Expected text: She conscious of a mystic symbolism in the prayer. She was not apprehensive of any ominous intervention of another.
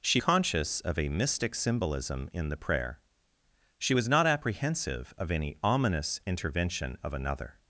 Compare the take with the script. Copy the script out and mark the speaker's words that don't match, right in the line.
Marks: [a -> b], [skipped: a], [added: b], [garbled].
She conscious of a mystic symbolism in the prayer. She was not apprehensive of any ominous intervention of another.